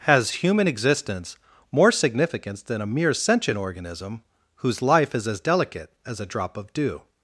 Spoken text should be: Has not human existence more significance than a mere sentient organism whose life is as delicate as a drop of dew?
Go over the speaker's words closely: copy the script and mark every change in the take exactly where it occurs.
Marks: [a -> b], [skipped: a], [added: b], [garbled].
Has [skipped: not] human existence more significance than a mere sentient organism whose life is as delicate as a drop of dew?